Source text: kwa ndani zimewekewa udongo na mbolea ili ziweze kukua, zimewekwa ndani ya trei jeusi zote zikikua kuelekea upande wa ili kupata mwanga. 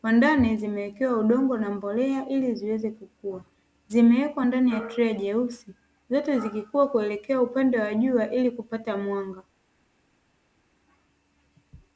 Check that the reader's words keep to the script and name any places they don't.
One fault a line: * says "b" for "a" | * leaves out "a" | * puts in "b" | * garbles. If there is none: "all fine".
* puts in "jua"